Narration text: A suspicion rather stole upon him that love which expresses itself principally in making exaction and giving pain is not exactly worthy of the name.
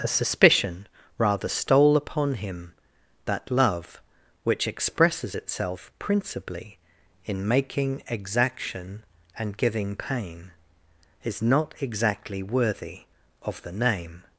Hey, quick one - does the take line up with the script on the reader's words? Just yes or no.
yes